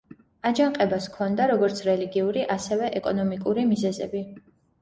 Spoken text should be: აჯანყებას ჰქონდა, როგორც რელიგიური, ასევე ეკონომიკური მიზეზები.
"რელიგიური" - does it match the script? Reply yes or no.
yes